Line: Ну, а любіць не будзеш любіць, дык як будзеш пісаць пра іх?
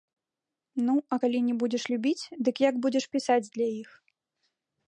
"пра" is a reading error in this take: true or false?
true